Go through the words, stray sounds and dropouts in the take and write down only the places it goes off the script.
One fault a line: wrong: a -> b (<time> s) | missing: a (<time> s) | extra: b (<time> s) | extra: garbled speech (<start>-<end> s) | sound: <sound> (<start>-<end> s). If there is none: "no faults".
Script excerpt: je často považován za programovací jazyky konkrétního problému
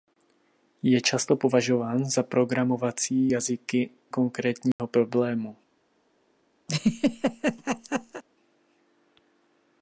sound: dropout (4.7-4.8 s)
sound: laugh (6.7-8.2 s)